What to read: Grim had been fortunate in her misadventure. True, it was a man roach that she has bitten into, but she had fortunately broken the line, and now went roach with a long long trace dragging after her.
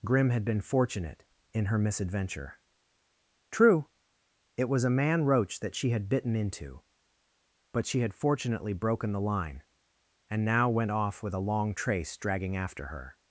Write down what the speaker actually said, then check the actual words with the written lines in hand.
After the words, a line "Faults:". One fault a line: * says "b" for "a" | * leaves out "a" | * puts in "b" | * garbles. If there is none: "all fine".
Grim had been fortunate in her misadventure. True, it was a man roach that she had bitten into, but she had fortunately broken the line, and now went off with a long trace dragging after her.
Faults:
* says "had" for "has"
* says "off" for "roach"
* leaves out "long"